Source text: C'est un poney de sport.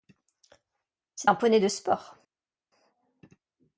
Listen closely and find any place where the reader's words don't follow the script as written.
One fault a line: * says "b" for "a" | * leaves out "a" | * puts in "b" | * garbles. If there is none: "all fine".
all fine